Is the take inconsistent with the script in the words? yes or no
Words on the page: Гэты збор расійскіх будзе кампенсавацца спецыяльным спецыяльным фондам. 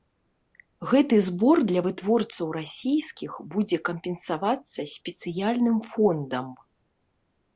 yes